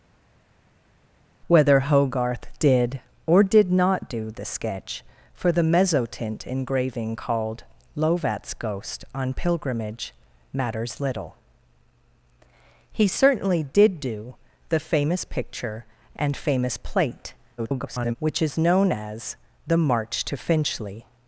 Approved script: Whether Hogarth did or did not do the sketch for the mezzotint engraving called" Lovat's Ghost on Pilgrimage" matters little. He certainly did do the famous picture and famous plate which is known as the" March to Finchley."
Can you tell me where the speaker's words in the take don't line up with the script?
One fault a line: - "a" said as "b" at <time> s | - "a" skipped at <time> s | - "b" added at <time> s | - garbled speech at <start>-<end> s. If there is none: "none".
- garbled speech at 17.6-18.2 s